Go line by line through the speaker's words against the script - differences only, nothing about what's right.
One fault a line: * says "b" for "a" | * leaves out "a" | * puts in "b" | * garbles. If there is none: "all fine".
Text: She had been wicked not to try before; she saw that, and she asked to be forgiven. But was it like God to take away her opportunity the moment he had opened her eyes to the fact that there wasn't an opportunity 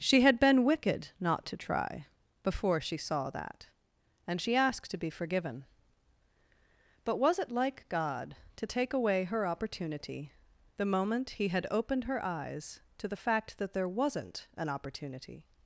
all fine